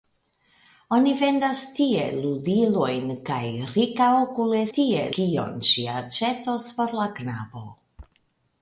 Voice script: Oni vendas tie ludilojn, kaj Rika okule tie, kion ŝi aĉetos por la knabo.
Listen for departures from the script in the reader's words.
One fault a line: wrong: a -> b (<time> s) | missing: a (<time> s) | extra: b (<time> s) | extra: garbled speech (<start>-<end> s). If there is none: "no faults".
no faults